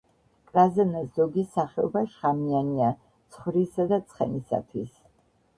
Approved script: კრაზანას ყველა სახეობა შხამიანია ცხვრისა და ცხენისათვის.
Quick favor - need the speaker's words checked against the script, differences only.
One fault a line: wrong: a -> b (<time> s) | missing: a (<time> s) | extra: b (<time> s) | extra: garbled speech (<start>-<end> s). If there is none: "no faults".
wrong: ყველა -> ზოგი (1.2 s)